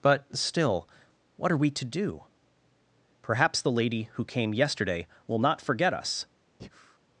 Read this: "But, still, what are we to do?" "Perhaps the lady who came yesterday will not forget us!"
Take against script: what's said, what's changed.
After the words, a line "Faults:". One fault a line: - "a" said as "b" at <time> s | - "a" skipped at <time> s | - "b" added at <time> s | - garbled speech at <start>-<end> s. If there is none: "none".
"But, still, what are we to do?" "Perhaps the lady who came yesterday will not forget us!"
Faults:
none